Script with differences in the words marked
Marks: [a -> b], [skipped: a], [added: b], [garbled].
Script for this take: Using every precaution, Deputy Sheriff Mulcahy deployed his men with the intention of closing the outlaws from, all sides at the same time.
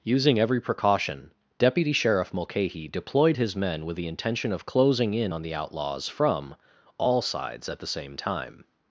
Using every precaution, Deputy Sheriff Mulcahy deployed his men with the intention of closing [added: in on] the outlaws from, all sides at the same time.